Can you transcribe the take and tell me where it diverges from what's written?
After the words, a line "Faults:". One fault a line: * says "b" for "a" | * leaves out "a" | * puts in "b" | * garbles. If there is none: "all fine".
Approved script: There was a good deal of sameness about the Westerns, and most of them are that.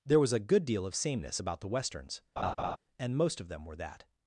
There was a good deal of sameness about the Westerns, and most of them were that.
Faults:
* says "were" for "are"